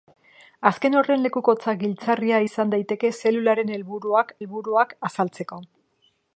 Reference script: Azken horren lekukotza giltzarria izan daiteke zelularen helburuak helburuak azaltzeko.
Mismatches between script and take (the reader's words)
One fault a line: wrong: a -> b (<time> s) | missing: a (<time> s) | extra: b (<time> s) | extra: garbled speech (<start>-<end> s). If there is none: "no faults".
no faults